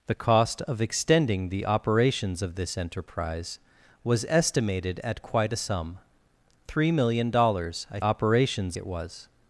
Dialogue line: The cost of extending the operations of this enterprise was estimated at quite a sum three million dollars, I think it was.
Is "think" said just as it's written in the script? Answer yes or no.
no